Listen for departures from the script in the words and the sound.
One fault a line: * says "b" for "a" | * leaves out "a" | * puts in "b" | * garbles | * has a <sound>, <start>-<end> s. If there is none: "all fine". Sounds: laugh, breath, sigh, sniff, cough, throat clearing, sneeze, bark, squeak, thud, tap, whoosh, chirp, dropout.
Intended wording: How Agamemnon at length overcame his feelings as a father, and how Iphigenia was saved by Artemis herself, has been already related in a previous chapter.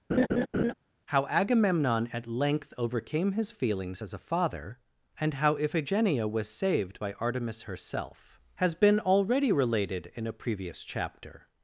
* has a laugh, 0.1-0.7 s